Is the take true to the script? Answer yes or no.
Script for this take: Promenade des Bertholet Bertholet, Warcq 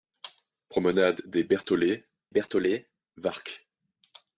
yes